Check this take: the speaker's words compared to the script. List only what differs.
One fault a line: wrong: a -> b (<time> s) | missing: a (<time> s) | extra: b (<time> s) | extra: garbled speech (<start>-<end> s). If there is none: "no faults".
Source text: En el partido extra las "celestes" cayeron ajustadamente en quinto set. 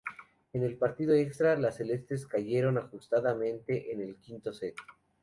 extra: el (4.0 s)